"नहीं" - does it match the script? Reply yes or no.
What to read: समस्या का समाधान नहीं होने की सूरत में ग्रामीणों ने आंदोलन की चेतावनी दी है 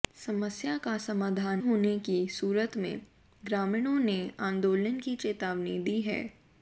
no